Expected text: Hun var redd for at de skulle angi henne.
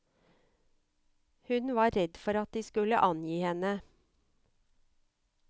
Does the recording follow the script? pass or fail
pass